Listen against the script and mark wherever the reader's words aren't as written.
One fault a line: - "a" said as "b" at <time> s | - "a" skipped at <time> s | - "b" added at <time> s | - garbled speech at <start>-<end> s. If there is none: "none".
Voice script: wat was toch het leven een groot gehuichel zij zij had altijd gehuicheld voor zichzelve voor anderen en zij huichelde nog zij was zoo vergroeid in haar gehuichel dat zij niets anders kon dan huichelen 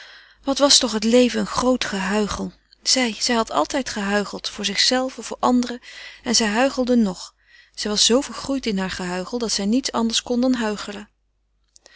none